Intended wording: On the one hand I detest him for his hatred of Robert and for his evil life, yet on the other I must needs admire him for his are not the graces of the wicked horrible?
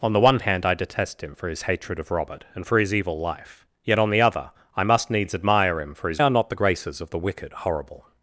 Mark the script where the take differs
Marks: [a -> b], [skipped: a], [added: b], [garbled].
On the one hand I detest him for his hatred of Robert and for his evil life, yet on the other I must needs admire him for his are not the graces of the wicked horrible?